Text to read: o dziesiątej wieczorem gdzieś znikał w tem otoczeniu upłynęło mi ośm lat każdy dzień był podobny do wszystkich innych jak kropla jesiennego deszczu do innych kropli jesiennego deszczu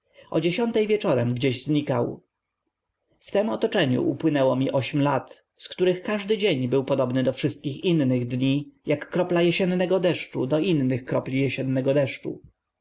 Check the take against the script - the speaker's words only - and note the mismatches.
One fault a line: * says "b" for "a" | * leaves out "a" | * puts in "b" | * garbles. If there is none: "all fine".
* puts in "z których"
* puts in "dni"